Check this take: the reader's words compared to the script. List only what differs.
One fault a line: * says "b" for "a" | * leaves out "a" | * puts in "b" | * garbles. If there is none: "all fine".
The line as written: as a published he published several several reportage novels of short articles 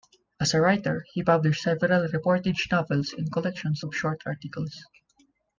* says "writer" for "published"
* leaves out "several"
* puts in "and collections"